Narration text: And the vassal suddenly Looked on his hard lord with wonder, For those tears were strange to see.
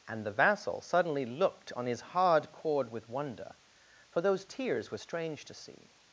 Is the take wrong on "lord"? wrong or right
wrong